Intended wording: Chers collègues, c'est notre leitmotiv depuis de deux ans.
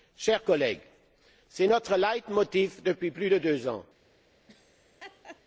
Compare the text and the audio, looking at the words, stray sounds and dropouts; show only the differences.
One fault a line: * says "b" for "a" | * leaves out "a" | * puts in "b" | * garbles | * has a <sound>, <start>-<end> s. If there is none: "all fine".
* puts in "plus"
* has a laugh, 4.5-5.4 s